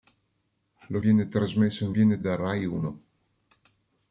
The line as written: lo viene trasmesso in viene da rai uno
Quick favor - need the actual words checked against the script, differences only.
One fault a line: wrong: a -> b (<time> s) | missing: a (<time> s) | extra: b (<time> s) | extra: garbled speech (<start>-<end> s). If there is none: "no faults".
no faults